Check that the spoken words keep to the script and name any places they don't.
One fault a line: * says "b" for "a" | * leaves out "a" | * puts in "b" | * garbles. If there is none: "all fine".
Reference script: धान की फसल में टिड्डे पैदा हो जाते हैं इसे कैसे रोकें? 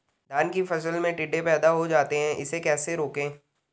all fine